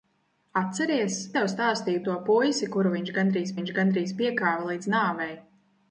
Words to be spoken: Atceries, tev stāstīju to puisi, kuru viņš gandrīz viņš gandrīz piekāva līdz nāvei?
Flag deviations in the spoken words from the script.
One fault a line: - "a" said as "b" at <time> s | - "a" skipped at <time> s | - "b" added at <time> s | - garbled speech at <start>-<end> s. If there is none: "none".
none